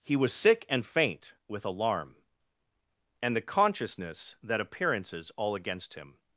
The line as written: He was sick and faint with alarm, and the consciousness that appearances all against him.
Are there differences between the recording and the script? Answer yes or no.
no